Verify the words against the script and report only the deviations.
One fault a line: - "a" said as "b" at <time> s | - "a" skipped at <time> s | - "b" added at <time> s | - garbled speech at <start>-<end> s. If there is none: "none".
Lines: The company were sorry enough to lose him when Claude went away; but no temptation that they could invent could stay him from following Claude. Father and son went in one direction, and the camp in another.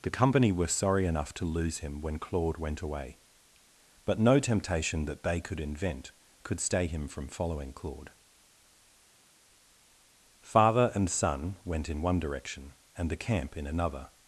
none